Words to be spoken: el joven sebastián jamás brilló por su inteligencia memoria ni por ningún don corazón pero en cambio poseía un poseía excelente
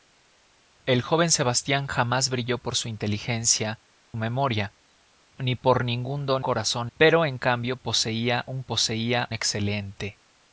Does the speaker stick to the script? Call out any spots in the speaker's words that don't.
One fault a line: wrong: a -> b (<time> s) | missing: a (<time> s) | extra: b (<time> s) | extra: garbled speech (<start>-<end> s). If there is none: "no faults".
no faults